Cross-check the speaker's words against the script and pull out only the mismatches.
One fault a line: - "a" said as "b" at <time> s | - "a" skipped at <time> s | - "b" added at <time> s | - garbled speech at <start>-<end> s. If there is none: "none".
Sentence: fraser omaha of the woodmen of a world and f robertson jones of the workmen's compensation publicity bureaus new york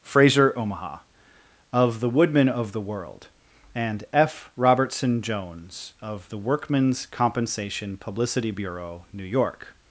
- "a" said as "the" at 2.7 s
- "bureaus" said as "bureau" at 8.5 s